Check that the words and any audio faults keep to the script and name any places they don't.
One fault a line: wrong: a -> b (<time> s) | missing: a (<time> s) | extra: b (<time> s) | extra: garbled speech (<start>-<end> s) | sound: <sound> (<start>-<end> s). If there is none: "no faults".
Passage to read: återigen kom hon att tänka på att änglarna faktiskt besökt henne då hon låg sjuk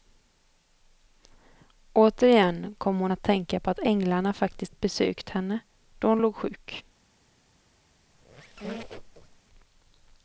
sound: squeak (8.1-9.4 s)